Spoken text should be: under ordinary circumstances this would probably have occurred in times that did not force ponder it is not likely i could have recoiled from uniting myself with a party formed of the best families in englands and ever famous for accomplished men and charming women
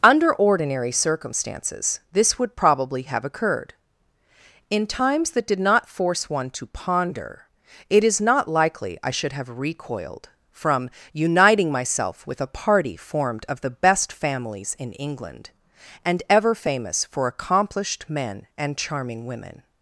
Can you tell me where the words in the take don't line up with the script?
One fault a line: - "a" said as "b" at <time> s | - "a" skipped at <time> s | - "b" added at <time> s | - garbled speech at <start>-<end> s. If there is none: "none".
- "one to" added at 6.3 s
- "could" said as "should" at 9.1 s
- "englands" said as "england" at 14.9 s